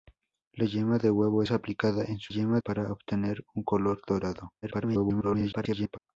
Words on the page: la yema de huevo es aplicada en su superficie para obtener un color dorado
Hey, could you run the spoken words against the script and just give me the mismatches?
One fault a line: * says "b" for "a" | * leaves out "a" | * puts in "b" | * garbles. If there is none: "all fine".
* says "yema" for "superficie"
* garbles